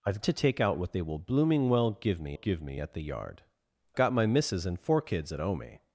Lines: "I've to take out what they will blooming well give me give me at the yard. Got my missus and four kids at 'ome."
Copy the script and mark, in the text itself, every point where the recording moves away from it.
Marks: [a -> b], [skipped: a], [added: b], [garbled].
"I've to take out what they will blooming well give me give me at the yard. Got my missus and four kids at 'ome."